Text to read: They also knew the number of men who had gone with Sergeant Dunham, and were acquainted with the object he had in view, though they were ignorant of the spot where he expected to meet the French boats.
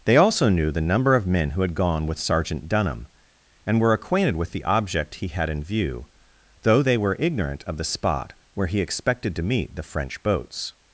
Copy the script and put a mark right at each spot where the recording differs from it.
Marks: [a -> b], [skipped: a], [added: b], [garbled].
They also knew the number of men who had gone with Sergeant Dunham, and were acquainted with the object he had in view, though they were ignorant of the spot where he expected to meet the French boats.